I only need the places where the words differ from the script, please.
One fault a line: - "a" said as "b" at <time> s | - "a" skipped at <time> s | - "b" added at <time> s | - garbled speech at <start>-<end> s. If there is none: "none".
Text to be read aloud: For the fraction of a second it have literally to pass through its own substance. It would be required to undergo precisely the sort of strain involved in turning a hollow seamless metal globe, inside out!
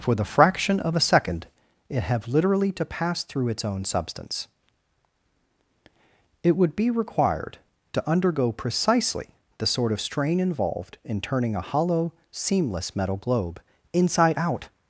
none